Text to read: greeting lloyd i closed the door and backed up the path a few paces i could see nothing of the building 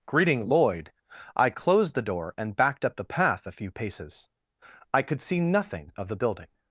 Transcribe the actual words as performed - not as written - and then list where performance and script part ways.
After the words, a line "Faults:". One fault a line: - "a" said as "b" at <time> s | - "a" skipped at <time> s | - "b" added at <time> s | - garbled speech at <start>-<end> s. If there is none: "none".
greeting lloyd i closed the door and backed up the path a few paces i could see nothing of the building
Faults:
none